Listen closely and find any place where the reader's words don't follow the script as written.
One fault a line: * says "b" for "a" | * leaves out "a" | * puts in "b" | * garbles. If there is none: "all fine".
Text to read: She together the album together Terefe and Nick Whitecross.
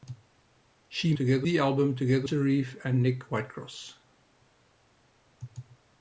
all fine